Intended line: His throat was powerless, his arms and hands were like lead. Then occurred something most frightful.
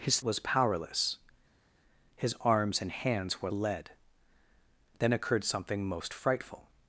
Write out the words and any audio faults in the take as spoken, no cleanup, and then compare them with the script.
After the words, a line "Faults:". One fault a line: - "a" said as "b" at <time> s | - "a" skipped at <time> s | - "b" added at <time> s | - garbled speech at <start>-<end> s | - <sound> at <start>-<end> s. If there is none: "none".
His was powerless, his arms and hands were lead. Then occurred something most frightful.
Faults:
- "throat" skipped at 0.2 s
- "like" skipped at 3.5 s